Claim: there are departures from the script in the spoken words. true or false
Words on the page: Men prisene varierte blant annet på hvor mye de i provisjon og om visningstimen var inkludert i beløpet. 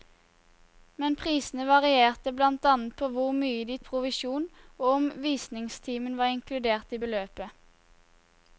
false